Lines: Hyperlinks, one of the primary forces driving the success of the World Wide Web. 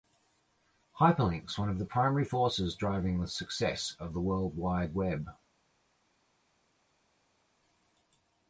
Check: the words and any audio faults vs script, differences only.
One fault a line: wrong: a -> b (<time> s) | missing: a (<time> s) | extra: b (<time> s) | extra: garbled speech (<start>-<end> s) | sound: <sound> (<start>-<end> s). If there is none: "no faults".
no faults